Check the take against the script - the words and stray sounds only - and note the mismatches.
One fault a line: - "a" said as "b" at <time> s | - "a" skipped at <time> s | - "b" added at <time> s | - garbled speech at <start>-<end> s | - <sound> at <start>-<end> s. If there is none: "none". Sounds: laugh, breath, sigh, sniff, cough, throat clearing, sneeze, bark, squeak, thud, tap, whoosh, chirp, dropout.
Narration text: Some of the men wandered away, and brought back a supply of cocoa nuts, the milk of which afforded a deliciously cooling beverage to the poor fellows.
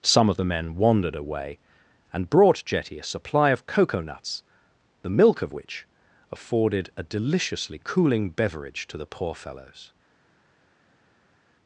- "back" said as "jetty" at 2.6 s